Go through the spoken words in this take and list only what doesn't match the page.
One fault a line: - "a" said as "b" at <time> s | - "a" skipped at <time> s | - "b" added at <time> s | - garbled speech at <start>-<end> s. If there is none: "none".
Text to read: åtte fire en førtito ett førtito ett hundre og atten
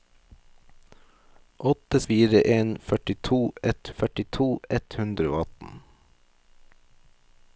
none